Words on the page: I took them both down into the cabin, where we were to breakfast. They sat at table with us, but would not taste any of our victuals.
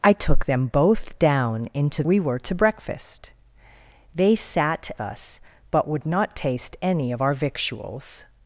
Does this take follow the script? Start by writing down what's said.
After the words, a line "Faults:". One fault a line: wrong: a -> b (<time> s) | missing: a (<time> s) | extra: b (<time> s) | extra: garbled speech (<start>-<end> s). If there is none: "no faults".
I took them both down into we were to breakfast. They sat us, but would not taste any of our victuals.
Faults:
missing: the cabin where (2.0 s)
missing: at table with (4.9 s)